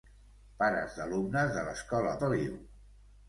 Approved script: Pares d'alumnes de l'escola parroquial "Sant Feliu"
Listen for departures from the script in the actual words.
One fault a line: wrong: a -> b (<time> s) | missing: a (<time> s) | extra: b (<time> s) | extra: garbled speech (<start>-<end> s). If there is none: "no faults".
missing: parroquial Sant (2.2 s)